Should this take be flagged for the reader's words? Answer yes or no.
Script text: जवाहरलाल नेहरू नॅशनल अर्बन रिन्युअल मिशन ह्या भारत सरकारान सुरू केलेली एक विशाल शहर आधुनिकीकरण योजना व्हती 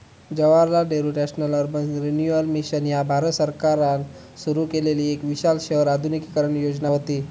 no